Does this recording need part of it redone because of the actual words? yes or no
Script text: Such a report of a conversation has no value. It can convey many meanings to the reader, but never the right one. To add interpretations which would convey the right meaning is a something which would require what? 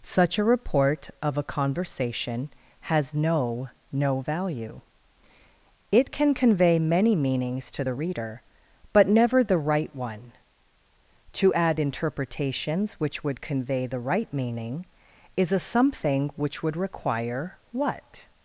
yes